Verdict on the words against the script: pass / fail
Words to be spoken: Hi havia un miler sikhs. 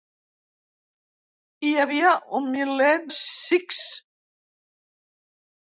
pass